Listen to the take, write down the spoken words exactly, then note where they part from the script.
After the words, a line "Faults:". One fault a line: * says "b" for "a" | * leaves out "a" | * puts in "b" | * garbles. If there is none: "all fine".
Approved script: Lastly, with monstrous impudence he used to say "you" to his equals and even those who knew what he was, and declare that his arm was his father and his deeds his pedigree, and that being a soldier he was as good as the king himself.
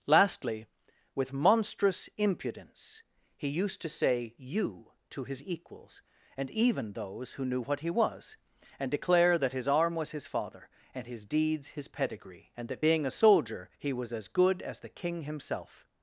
Lastly, with monstrous impudence he used to say "you" to his equals and even those who knew what he was, and declare that his arm was his father and his deeds his pedigree, and that being a soldier he was as good as the king himself.
Faults:
all fine